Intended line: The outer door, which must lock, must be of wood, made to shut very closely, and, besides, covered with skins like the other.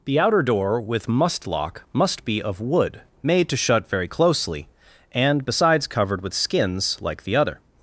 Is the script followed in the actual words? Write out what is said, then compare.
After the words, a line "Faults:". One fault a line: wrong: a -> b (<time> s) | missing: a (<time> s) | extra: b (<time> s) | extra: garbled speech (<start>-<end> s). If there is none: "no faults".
The outer door, with must lock, must be of wood, made to shut very closely, and, besides, covered with skins like the other.
Faults:
wrong: which -> with (0.8 s)